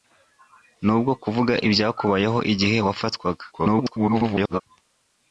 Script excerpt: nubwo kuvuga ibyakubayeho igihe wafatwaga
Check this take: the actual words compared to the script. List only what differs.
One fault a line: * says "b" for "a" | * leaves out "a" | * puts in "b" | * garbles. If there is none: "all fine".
* garbles